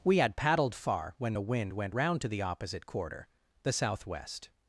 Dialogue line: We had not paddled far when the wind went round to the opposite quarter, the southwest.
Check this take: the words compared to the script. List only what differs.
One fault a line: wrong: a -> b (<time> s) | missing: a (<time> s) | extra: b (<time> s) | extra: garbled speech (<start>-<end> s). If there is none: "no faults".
missing: not (0.3 s)